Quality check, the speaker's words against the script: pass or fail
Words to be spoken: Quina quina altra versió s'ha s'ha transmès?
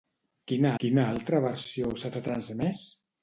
pass